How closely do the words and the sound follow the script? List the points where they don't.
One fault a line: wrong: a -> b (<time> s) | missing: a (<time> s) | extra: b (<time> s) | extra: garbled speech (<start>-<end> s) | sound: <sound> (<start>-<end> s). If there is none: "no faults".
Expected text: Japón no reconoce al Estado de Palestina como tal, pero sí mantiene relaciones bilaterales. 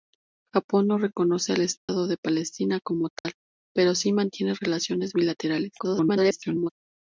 sound: dropout (1.8-1.9 s)
sound: dropout (3.2-3.3 s)
extra: garbled speech (5.8-6.7 s)